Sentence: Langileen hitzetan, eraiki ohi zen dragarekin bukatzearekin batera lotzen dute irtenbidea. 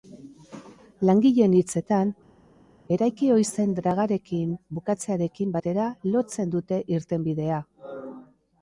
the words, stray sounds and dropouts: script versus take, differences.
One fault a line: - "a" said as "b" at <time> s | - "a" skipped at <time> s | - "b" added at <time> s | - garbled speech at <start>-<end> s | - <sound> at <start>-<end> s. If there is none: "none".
none